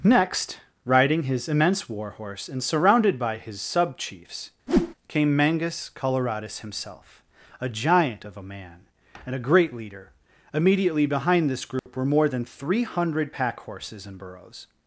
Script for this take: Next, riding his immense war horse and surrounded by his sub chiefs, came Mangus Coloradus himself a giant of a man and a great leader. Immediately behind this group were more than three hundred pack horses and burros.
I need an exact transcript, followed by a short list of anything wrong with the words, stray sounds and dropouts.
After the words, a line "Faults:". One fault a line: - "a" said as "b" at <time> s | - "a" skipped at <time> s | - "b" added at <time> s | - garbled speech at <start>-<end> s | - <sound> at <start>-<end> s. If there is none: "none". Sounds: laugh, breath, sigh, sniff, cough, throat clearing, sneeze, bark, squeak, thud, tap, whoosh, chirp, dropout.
Next, riding his immense war horse and surrounded by his sub chiefs, came Mangus Coloradus himself a giant of a man and a great leader. Immediately behind this group were more than three hundred pack horses and burros.
Faults:
- whoosh at 4.7-4.9 s
- dropout at 11.8-11.9 s